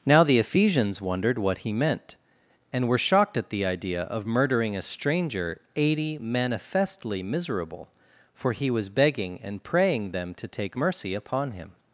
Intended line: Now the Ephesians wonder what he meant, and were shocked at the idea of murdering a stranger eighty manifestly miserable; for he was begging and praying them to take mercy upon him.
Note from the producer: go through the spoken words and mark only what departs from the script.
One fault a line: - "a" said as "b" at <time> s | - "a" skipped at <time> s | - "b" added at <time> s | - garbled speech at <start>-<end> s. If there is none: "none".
- "wonder" said as "wondered" at 1.0 s